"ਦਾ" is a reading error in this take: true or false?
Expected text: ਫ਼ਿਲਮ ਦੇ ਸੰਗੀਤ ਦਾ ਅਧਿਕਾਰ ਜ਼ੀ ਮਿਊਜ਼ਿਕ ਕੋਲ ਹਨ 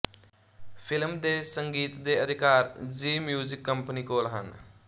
true